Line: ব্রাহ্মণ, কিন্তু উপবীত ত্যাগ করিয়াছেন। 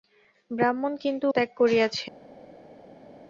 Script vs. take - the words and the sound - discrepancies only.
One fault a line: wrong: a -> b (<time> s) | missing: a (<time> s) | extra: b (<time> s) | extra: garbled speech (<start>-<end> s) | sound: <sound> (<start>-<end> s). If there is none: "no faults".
missing: উপবীত (1.2 s)